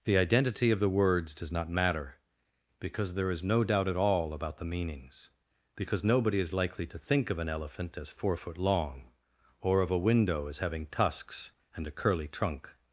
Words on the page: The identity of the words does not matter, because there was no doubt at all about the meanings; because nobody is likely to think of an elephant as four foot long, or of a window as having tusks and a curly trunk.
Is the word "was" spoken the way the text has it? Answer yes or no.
no